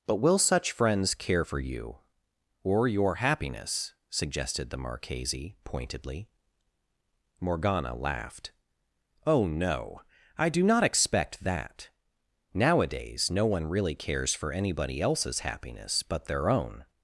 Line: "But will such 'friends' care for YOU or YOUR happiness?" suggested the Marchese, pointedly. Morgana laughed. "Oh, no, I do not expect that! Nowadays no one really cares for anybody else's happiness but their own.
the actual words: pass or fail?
pass